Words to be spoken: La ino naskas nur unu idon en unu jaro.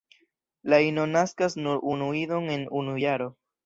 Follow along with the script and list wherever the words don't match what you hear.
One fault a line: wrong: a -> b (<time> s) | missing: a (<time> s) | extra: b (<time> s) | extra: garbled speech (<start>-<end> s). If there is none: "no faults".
no faults